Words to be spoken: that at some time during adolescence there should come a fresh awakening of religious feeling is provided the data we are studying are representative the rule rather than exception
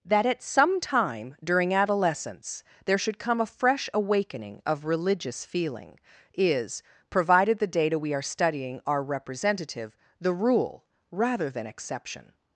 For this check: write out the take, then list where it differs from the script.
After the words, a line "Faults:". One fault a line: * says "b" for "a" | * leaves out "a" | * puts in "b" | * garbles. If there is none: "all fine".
that at some time during adolescence there should come a fresh awakening of religious feeling is provided the data we are studying are representative the rule rather than exception
Faults:
all fine